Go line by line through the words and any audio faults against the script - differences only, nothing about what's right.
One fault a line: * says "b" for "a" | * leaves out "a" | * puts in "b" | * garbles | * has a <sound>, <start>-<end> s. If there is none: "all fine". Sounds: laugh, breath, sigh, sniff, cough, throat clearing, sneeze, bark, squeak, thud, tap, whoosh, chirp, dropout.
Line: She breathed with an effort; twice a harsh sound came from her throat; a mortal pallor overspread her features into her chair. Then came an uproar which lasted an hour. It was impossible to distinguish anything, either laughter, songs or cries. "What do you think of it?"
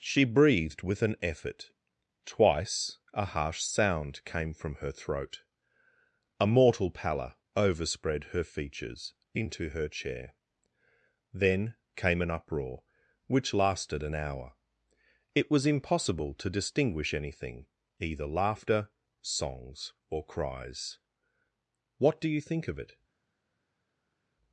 all fine